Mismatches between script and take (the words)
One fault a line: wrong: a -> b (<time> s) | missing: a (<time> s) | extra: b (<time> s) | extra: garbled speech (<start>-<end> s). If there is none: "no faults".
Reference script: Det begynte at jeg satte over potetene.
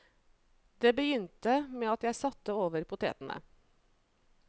extra: med (1.7 s)